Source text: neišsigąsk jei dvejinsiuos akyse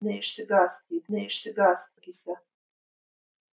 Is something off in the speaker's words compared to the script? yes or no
yes